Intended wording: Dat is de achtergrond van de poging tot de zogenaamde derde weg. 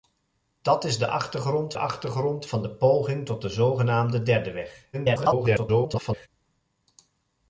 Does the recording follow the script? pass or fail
fail